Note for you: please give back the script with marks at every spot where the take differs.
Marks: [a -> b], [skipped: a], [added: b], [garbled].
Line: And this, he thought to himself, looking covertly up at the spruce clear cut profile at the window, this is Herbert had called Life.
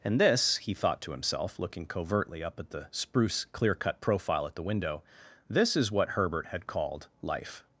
And this, he thought to himself, looking covertly up at the spruce clear cut profile at the window, this is [added: what] Herbert had called Life.